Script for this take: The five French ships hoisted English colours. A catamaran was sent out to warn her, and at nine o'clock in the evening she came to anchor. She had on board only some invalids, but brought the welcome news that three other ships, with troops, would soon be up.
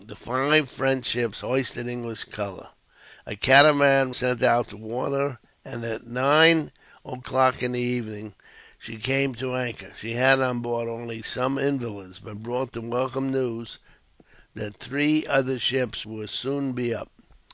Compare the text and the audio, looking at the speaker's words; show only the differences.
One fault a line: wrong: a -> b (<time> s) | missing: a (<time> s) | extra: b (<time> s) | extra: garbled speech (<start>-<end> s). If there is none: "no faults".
missing: was (4.1 s)
missing: with troops (16.1 s)